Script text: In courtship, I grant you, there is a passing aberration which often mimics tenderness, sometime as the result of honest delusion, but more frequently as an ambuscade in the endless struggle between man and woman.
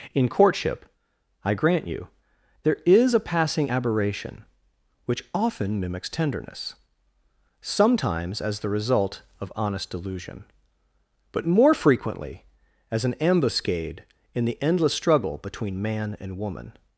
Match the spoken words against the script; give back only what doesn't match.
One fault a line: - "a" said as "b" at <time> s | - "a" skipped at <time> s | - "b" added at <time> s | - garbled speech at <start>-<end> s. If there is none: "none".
- "sometime" said as "sometimes" at 7.6 s